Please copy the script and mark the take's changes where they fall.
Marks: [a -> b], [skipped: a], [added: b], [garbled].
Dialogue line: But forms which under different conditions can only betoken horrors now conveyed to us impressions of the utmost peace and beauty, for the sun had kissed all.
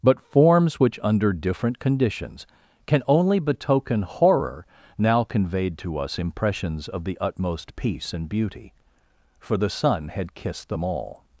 But forms which under different conditions can only betoken [horrors -> horror] now conveyed to us impressions of the utmost peace and beauty, for the sun had kissed [added: them] all.